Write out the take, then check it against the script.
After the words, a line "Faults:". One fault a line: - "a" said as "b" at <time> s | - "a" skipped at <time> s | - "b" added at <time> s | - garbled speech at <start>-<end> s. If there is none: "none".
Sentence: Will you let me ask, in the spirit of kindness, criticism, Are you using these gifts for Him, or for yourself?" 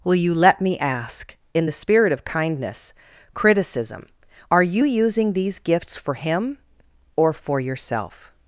Will you let me ask, in the spirit of kindness, criticism, Are you using these gifts for Him, or for yourself?"
Faults:
none